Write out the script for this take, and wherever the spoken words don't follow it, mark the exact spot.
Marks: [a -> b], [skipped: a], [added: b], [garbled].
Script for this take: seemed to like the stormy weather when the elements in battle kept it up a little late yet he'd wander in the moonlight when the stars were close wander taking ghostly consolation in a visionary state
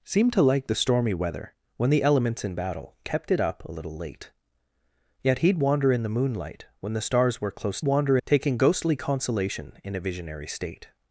seemed to like the stormy weather when the elements in battle kept it up a little late yet he'd wander in the moonlight when the stars were close wander taking ghostly consolation in a visionary state